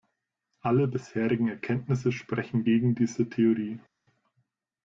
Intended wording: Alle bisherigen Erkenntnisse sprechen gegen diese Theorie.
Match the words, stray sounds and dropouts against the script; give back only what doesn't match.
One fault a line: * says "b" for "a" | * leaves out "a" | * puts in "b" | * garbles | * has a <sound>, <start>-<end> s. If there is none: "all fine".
all fine